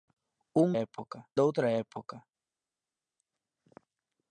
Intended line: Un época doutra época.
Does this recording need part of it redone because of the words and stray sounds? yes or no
no